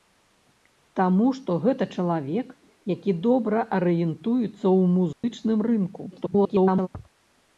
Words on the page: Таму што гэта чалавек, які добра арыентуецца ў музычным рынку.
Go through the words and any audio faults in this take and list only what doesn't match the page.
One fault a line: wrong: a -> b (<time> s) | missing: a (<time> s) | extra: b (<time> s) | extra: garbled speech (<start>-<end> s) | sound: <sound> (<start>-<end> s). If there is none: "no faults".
sound: dropout (5.1-5.2 s)
extra: garbled speech (6.1-6.9 s)